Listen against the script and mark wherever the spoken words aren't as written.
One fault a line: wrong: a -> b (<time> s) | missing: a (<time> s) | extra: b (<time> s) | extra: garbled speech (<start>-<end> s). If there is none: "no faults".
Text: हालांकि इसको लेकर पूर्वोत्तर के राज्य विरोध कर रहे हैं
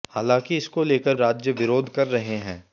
missing: पूर्वोत्तर के (1.1 s)